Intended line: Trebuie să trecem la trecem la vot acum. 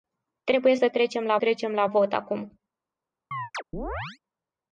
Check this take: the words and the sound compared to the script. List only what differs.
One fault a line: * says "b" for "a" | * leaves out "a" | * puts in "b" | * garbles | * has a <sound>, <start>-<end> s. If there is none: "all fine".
* has a chirp, 3.3-4.2 s